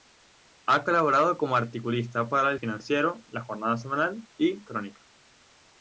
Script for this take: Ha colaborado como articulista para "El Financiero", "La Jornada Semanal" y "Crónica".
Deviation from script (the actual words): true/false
false